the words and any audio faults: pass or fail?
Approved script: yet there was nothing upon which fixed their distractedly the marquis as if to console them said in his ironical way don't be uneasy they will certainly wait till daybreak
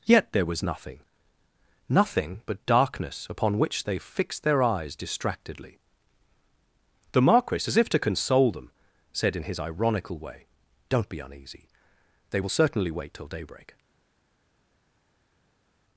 fail